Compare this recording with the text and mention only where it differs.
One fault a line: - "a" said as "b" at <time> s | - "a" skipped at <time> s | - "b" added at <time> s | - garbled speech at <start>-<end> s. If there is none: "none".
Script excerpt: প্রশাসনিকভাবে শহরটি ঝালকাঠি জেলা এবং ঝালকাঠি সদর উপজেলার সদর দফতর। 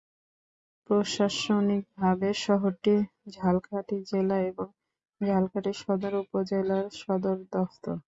none